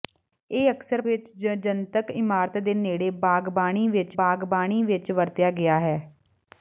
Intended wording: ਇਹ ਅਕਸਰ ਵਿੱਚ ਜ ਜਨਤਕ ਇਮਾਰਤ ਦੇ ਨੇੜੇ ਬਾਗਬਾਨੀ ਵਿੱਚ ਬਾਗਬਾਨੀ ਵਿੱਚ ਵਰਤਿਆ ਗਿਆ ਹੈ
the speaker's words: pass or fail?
pass